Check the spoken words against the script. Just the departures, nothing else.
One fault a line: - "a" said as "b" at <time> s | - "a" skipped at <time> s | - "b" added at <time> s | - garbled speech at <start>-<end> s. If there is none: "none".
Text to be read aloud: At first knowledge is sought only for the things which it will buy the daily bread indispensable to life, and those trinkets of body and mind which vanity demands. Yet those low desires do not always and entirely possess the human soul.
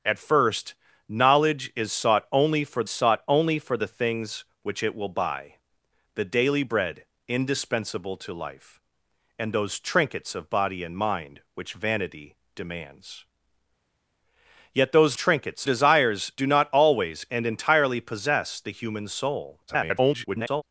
- "sought only for" added at 2.9 s
- "low" said as "trinkets" at 15.1 s
- garbled speech at 19.7-20.6 s